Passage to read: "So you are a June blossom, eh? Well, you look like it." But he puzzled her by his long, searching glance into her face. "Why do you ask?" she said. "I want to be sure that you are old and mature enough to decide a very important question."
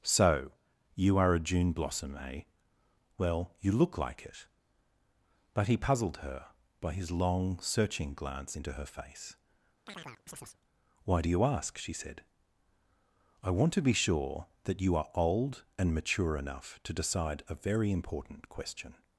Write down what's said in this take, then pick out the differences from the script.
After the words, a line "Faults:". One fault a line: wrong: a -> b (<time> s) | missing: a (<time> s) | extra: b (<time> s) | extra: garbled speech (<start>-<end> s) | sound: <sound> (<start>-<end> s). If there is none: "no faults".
"So you are a June blossom, eh? Well, you look like it." But he puzzled her by his long, searching glance into her face. "Why do you ask?" she said. "I want to be sure that you are old and mature enough to decide a very important question."
Faults:
sound: chirp (9.9-10.6 s)